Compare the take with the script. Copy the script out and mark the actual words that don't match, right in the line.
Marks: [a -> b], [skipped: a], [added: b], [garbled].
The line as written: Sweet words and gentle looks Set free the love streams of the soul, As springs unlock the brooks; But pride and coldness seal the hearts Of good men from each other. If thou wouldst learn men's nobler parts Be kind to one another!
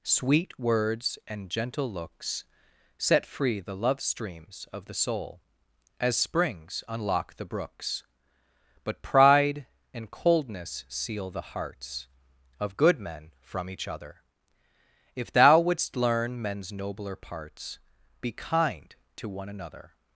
Sweet words and gentle looks Set free the love streams of the soul, As springs unlock the brooks; But pride and coldness seal the hearts Of good men from each other. If thou wouldst learn men's nobler parts Be kind to one another!